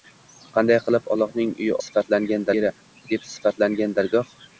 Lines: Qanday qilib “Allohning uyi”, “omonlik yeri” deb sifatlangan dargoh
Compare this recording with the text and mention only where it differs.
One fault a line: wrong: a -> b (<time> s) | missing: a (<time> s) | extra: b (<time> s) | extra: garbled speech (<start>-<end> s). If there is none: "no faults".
wrong: omonlik -> sifatlangan (1.8 s)